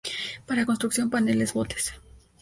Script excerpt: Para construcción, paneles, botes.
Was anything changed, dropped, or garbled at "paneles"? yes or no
no